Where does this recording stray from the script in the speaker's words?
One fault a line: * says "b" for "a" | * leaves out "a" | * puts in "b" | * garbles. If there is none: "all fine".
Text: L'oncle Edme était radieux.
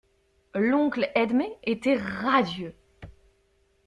all fine